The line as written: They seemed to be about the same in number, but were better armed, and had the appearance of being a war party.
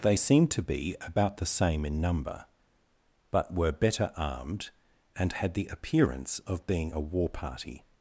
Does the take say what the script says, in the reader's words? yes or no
yes